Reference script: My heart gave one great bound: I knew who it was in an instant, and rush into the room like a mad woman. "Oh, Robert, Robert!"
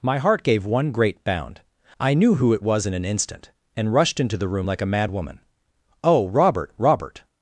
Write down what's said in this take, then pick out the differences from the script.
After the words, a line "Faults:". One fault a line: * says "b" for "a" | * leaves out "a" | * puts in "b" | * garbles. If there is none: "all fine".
My heart gave one great bound: I knew who it was in an instant, and rushed into the room like a mad woman. "Oh, Robert, Robert!"
Faults:
* says "rushed" for "rush"